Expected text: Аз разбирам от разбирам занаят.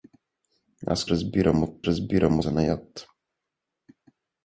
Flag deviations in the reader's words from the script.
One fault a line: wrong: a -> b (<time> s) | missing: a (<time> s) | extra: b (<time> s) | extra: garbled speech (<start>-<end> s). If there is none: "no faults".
no faults